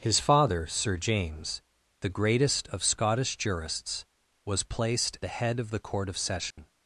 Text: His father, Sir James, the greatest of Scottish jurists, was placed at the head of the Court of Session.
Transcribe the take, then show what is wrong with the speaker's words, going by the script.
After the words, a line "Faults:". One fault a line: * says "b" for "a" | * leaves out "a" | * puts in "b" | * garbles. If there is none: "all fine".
His father, Sir James, the greatest of Scottish jurists, was placed the head of the Court of Session.
Faults:
* leaves out "at"